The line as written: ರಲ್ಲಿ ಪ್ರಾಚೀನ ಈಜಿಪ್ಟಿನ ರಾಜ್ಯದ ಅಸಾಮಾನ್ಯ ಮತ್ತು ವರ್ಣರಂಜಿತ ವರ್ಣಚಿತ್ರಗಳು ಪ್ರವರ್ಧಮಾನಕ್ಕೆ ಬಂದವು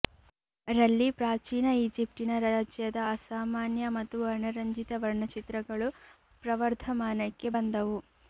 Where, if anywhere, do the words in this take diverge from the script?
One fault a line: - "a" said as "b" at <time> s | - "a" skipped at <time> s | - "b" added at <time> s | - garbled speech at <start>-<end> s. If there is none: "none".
none